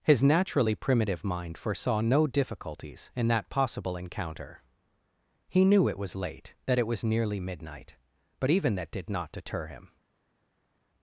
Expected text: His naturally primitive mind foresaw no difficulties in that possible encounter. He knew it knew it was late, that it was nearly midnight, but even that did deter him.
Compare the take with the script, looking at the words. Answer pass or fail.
fail